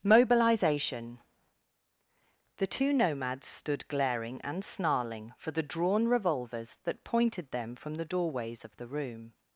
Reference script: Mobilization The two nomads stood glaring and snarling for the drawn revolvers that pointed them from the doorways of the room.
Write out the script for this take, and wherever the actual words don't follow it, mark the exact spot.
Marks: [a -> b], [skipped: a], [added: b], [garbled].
Mobilization The two nomads stood glaring and snarling for the drawn revolvers that pointed them from the doorways of the room.